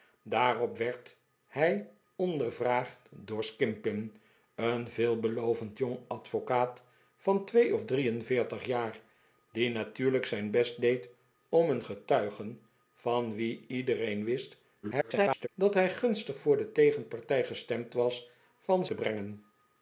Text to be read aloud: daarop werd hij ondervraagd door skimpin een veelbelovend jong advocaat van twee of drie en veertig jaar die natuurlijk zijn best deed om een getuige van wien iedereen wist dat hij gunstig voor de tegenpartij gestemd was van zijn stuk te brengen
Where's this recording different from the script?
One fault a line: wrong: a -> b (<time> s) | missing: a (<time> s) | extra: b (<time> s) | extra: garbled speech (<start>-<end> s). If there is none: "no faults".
extra: garbled speech (14.8-15.5 s)
missing: zijn stuk (18.8 s)